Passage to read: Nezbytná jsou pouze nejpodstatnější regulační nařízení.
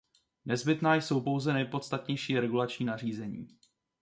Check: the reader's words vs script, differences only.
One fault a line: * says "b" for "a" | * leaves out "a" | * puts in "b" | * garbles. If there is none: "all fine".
all fine